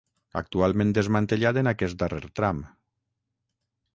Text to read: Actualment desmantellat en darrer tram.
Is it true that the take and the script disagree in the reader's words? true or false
true